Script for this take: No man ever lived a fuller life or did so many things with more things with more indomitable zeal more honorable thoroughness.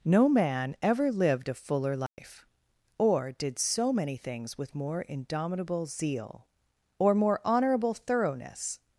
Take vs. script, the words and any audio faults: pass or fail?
fail